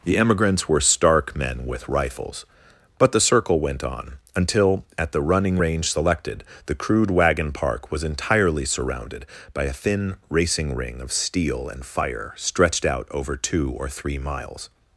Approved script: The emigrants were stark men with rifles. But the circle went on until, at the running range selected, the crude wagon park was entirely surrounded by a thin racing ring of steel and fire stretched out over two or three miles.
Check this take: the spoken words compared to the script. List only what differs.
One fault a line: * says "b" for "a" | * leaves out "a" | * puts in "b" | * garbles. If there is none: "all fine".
all fine